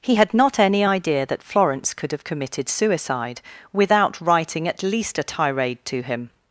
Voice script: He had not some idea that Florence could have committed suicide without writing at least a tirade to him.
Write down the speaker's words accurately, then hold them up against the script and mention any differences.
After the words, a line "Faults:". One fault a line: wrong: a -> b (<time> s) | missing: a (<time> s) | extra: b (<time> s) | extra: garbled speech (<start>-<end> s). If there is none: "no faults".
He had not any idea that Florence could have committed suicide without writing at least a tirade to him.
Faults:
wrong: some -> any (0.6 s)